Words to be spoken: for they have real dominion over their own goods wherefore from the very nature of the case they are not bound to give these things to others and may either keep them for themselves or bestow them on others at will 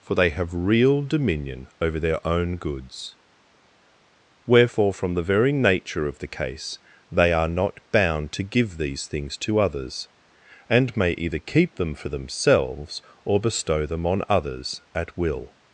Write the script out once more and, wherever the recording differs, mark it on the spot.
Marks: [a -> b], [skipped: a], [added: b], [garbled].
for they have real dominion over their own goods wherefore from the very nature of the case they are not bound to give these things to others and may either keep them for themselves or bestow them on others at will